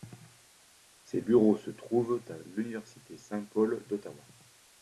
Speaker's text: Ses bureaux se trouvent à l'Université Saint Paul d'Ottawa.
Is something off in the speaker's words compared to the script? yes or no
no